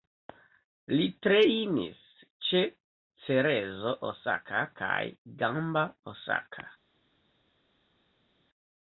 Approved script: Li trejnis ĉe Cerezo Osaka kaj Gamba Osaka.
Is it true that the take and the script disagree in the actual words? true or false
false